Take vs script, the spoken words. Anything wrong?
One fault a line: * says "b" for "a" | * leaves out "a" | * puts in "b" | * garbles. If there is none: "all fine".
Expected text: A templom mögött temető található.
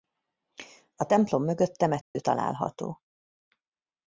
all fine